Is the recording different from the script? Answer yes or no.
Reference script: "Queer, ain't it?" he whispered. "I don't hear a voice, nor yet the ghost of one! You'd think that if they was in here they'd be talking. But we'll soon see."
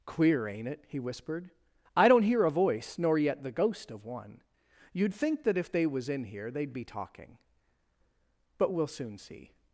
no